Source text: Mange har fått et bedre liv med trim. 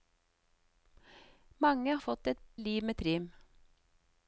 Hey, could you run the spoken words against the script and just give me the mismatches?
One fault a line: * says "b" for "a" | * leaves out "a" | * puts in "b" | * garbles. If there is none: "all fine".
* leaves out "har"
* leaves out "bedre"